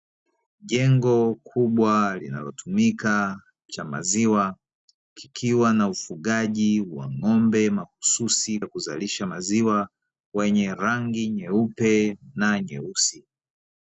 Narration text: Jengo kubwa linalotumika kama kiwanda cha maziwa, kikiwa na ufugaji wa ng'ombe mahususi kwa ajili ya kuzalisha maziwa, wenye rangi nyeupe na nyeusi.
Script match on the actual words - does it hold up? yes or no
no